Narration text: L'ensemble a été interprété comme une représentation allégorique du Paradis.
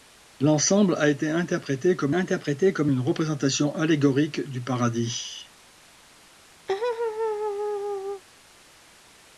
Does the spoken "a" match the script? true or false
true